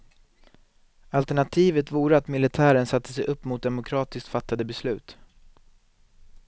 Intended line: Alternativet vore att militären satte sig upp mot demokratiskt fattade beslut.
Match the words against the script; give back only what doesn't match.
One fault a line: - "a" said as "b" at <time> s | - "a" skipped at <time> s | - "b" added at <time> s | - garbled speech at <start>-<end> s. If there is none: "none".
none